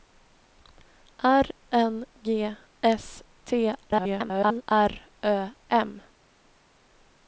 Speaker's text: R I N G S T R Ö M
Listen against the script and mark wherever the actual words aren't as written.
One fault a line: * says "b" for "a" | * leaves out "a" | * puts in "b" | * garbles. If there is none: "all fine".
* leaves out "I"
* garbles